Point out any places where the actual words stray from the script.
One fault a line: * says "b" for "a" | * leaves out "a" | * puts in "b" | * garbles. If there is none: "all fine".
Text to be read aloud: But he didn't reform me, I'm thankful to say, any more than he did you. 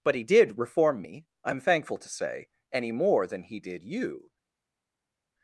* says "did" for "didn't"